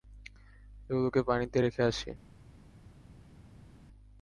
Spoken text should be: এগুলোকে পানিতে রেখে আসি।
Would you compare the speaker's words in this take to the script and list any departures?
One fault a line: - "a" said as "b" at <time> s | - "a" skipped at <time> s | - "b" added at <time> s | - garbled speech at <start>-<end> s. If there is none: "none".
none